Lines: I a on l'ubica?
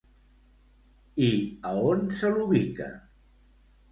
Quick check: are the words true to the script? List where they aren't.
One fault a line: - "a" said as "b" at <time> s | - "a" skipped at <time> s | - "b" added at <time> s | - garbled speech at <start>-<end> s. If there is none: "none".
- "se" added at 2.2 s